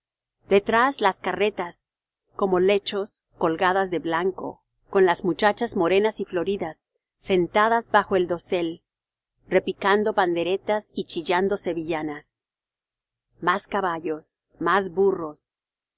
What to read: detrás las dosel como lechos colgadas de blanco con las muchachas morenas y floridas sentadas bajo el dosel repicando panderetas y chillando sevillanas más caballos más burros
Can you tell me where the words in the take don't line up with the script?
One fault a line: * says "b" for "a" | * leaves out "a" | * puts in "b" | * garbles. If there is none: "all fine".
* says "carretas" for "dosel"